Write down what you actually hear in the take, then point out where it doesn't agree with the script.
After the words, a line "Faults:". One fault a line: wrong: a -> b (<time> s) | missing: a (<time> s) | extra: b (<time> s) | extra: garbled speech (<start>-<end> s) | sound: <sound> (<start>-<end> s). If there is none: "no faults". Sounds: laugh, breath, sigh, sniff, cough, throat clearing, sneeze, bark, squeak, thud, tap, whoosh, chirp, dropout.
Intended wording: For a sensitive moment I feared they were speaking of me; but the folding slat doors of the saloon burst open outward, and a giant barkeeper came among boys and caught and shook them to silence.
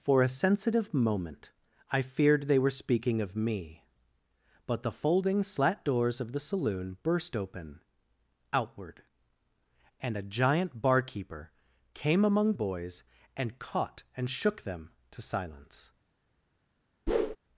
For a sensitive moment I feared they were speaking of me; but the folding slat doors of the saloon burst open outward, and a giant barkeeper came among boys and caught and shook them to silence.
Faults:
sound: whoosh (17.1-17.4 s)